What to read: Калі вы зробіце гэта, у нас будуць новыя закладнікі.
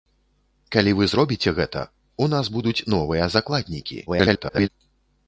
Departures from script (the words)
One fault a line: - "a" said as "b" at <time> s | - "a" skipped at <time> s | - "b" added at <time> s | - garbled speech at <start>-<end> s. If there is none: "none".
- garbled speech at 4.1-4.7 s